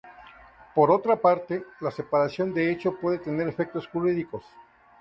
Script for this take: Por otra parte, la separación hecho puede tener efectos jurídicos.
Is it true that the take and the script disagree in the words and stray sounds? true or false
true